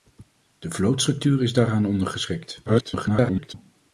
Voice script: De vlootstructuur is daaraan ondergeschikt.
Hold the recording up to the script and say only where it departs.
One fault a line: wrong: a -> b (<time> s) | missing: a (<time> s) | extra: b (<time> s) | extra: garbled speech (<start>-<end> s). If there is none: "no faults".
extra: garbled speech (2.7-3.5 s)